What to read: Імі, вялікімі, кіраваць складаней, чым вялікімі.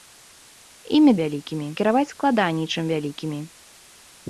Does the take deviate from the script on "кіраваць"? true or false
false